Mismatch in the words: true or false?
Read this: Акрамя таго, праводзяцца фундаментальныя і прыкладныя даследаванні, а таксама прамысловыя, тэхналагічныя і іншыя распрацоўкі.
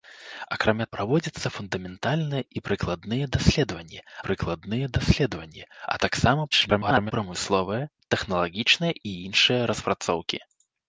true